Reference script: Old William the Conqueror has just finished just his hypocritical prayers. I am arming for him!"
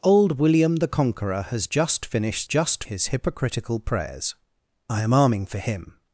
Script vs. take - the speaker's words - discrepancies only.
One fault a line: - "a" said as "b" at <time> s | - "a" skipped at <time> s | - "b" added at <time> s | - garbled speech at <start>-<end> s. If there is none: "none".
none